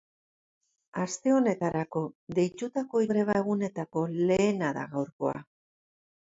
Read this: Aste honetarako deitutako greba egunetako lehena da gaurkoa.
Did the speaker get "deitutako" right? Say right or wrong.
right